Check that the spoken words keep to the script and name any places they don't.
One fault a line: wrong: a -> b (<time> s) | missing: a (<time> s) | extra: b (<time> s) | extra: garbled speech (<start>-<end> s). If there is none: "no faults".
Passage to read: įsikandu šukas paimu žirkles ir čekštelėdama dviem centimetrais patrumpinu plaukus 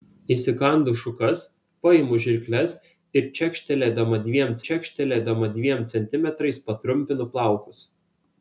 extra: čekštelėdama dviem (4.7 s)